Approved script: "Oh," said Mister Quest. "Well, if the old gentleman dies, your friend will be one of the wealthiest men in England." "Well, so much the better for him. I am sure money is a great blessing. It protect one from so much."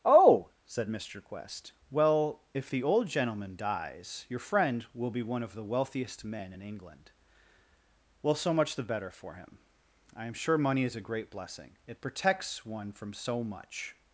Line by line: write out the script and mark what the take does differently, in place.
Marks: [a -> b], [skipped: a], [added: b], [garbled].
"Oh," said Mister Quest. "Well, if the old gentleman dies, your friend will be one of the wealthiest men in England." "Well, so much the better for him. I am sure money is a great blessing. It [protect -> protects] one from so much."